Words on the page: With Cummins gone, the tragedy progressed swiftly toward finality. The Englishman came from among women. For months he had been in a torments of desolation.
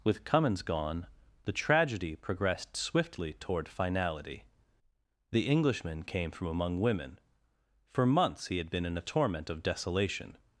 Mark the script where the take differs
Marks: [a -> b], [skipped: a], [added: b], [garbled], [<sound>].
With Cummins gone, the tragedy progressed swiftly toward finality. The Englishman came from among women. For months he had been in a [torments -> torment] of desolation.